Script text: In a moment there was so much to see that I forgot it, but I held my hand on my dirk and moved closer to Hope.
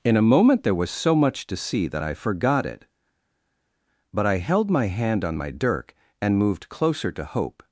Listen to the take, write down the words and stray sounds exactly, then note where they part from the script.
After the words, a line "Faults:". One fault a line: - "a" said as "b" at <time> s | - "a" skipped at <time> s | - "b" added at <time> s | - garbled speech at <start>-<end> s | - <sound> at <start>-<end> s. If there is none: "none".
In a moment there was so much to see that I forgot it, but I held my hand on my dirk and moved closer to Hope.
Faults:
none